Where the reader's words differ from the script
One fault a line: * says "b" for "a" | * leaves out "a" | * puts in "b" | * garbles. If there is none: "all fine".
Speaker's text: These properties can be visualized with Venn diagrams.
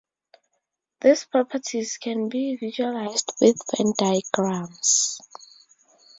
all fine